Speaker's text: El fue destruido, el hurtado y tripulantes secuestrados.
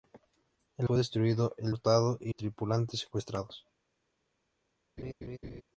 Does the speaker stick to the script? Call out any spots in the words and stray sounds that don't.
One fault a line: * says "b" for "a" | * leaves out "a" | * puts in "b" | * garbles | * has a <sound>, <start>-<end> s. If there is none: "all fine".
* has a laugh, 5.0-5.6 s